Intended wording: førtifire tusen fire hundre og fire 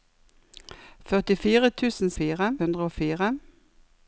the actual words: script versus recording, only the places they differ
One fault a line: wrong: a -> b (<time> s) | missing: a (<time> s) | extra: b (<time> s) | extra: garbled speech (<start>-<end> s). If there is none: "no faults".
no faults